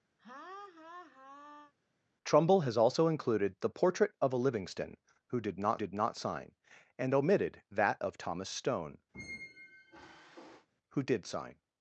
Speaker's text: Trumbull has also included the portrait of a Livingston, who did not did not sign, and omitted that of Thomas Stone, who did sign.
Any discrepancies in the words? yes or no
no